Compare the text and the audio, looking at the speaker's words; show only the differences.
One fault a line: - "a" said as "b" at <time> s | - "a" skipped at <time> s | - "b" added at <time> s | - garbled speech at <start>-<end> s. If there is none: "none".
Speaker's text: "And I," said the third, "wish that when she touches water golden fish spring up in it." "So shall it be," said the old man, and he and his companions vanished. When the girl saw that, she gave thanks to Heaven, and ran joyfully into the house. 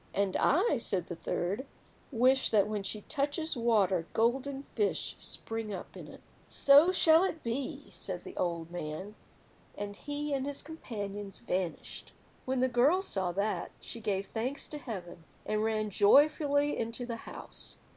none